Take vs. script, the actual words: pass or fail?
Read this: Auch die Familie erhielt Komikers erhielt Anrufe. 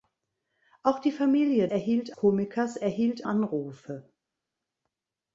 pass